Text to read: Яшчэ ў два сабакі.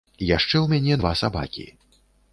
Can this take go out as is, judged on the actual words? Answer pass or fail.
fail